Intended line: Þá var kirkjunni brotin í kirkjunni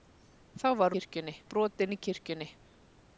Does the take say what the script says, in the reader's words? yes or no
yes